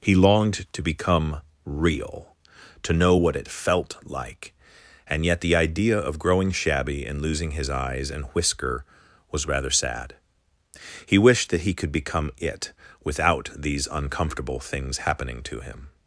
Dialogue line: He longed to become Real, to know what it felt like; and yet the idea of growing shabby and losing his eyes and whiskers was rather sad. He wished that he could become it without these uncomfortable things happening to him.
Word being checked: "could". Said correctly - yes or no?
yes